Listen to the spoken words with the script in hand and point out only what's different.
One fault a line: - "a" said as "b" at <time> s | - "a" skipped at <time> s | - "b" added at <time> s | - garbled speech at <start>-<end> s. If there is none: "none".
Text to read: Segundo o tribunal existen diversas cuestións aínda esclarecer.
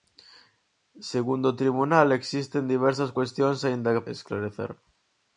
none